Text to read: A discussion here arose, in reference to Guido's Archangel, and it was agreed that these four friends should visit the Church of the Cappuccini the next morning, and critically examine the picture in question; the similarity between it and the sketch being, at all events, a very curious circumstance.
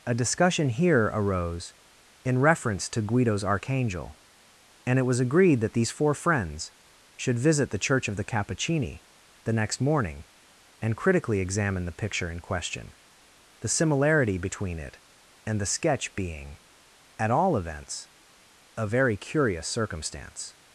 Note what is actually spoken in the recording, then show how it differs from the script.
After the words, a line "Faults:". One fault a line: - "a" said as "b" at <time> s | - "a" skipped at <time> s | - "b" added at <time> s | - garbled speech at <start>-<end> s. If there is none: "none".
A discussion here arose, in reference to Guido's Archangel, and it was agreed that these four friends should visit the Church of the Cappuccini the next morning, and critically examine the picture in question; the similarity between it and the sketch being, at all events, a very curious circumstance.
Faults:
none